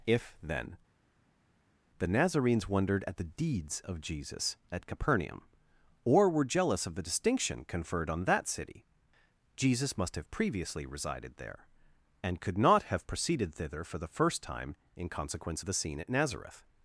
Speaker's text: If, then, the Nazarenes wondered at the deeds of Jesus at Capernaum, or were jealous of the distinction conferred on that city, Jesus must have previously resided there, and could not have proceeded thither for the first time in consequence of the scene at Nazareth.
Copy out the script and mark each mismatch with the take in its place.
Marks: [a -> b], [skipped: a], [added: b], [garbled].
If, then, the Nazarenes wondered at the deeds of Jesus at Capernaum, or were jealous of the distinction conferred on that city, Jesus must have previously resided there, and could not have proceeded thither for the first time in consequence of the scene at Nazareth.